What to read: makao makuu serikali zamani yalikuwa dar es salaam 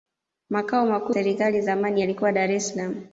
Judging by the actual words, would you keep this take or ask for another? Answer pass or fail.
pass